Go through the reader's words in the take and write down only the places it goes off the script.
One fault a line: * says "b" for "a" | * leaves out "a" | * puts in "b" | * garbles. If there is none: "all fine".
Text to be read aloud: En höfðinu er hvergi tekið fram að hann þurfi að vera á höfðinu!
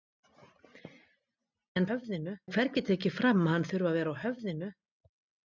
all fine